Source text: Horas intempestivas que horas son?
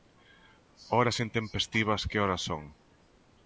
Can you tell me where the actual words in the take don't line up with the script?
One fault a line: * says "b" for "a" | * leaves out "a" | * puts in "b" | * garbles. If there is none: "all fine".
all fine